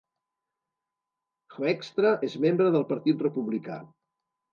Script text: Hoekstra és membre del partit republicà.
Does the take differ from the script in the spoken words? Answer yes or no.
no